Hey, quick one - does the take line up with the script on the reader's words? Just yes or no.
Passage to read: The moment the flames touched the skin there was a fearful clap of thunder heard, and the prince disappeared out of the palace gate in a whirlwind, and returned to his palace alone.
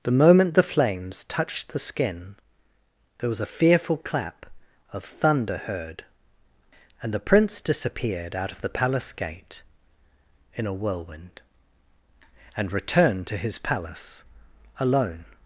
yes